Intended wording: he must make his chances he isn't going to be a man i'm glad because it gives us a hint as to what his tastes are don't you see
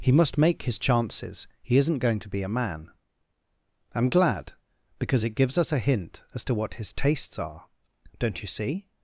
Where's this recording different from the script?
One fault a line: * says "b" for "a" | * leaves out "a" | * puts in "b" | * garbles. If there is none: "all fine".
all fine